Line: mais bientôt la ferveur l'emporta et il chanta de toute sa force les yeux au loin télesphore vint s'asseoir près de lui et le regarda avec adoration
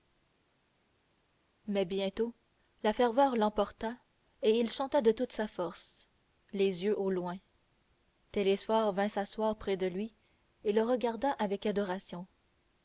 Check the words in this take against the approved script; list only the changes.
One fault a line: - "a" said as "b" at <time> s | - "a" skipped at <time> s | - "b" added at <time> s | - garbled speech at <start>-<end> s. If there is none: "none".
none